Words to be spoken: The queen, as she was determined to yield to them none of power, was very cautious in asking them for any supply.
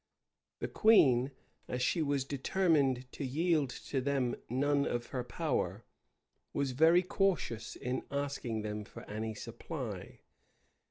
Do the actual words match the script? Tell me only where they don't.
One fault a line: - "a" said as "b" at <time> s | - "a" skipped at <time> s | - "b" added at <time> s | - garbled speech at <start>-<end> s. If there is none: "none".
- "her" added at 5.1 s